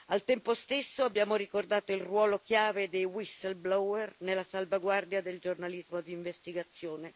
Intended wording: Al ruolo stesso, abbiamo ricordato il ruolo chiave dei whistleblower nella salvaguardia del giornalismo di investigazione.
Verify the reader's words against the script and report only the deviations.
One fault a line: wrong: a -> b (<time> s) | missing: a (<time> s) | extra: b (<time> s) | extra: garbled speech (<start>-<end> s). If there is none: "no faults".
wrong: ruolo -> tempo (0.2 s)